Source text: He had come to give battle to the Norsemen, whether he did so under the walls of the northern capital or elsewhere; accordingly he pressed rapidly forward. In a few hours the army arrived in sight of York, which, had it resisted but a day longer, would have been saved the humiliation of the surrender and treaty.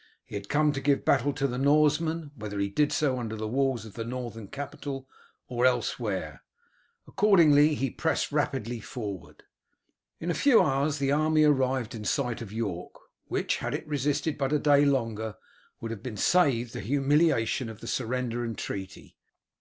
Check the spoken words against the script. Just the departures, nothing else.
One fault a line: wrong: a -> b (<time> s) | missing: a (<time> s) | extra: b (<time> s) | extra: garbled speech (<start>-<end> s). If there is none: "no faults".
no faults